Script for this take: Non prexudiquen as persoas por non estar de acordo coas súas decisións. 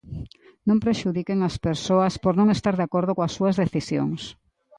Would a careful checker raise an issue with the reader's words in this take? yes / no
no